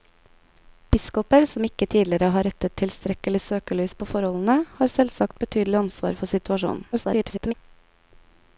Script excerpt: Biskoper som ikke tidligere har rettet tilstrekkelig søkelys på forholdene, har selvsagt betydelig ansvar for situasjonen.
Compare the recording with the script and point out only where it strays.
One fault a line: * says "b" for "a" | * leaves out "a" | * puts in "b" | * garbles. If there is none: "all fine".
* garbles